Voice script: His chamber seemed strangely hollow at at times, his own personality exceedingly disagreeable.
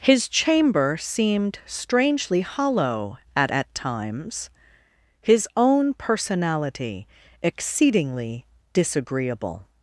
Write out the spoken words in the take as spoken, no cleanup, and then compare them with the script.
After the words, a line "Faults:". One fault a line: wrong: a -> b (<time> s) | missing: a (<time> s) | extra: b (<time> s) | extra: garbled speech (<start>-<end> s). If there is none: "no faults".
His chamber seemed strangely hollow at at times, his own personality exceedingly disagreeable.
Faults:
no faults